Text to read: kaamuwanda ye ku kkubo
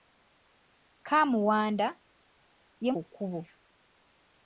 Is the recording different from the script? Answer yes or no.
no